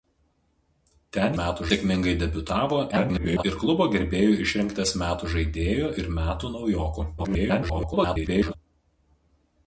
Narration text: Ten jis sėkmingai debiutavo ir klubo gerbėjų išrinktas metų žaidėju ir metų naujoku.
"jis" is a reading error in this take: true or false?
true